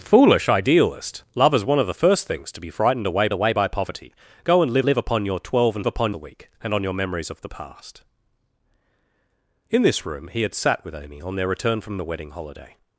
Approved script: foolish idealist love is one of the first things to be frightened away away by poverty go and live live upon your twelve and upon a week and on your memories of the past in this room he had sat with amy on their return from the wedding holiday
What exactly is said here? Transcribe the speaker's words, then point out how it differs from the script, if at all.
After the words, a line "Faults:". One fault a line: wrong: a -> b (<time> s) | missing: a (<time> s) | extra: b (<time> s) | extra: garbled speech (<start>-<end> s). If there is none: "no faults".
foolish idealist love is one of the first things to be frightened away away by poverty go and live live upon your twelve and upon a week and on your memories of the past in this room he had sat with amy on their return from the wedding holiday
Faults:
no faults